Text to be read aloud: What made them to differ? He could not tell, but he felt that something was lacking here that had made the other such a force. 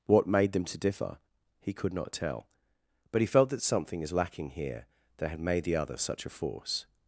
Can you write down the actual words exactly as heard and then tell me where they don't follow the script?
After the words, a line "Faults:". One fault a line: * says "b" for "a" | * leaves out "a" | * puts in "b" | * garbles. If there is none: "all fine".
What made them to differ? He could not tell, but he felt that something is lacking here that had made the other such a force.
Faults:
* says "is" for "was"